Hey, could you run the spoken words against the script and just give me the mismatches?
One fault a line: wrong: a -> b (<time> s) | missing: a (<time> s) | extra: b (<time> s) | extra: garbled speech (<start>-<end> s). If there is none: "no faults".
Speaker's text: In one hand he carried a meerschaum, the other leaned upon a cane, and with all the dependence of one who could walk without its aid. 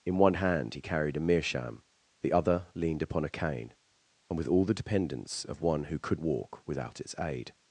no faults